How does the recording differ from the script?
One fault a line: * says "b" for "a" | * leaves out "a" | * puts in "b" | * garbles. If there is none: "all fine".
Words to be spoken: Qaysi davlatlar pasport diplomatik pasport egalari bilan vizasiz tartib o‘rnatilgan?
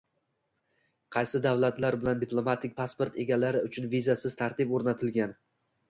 * says "bilan" for "pasport"
* says "uchun" for "bilan"